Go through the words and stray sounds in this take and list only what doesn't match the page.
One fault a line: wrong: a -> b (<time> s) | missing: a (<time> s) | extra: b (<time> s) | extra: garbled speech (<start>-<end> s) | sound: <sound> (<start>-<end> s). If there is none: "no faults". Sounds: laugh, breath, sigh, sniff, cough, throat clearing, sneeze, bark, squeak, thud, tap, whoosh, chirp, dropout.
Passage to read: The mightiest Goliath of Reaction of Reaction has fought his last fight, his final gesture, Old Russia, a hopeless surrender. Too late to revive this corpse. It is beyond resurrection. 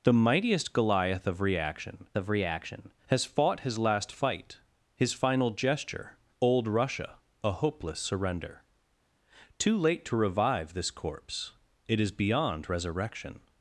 no faults